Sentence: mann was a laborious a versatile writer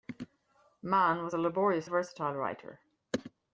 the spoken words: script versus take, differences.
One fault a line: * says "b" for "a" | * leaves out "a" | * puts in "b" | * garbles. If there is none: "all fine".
all fine